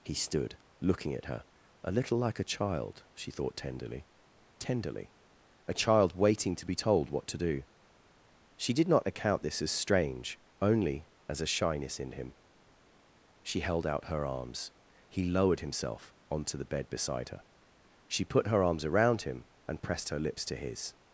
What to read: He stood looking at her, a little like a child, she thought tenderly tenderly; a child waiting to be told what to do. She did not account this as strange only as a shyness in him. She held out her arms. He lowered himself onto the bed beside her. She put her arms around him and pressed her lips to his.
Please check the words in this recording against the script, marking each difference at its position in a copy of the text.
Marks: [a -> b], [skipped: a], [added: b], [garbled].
He stood looking at her, a little like a child, she thought tenderly tenderly; a child waiting to be told what to do. She did not account this as strange only as a shyness in him. She held out her arms. He lowered himself onto the bed beside her. She put her arms around him and pressed her lips to his.